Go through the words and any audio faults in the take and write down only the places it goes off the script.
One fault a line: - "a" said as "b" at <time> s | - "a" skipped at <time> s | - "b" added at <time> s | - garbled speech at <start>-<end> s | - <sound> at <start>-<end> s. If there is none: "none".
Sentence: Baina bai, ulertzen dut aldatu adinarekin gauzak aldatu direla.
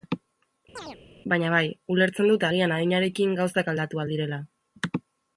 - chirp at 0.8-1.0 s
- "aldatu" said as "agian" at 2.5 s
- "ahal" added at 4.0 s